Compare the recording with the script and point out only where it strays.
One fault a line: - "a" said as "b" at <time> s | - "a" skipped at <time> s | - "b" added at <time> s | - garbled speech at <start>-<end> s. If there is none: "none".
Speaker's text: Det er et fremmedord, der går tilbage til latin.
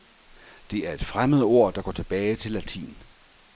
none